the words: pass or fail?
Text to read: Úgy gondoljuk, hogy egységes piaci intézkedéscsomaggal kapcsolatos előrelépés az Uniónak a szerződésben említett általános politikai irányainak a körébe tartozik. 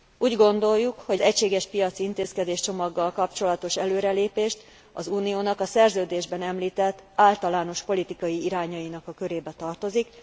pass